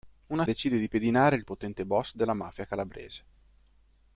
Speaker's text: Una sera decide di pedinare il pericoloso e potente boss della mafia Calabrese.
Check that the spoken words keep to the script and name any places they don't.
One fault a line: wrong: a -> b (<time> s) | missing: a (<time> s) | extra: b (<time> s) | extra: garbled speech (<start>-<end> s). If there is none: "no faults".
missing: sera (0.5 s)
missing: pericoloso (1.4 s)